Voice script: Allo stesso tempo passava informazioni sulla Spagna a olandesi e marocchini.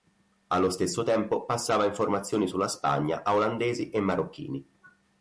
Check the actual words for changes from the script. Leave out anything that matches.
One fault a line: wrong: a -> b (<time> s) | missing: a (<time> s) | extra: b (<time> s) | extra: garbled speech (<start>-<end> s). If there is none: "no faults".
no faults